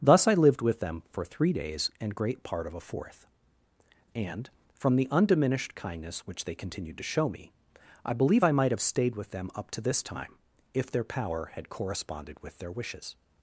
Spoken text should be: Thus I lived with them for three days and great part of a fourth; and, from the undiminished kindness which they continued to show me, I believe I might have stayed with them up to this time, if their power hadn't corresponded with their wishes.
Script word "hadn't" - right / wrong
wrong